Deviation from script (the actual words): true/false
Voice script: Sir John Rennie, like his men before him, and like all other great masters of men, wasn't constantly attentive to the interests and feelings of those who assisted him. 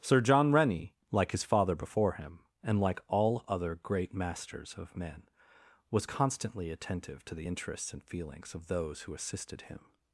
true